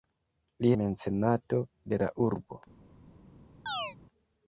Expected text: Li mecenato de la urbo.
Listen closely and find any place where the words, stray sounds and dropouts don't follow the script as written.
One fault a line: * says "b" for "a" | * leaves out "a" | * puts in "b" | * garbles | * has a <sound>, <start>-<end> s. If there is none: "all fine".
* has a chirp, 3.7-4.0 s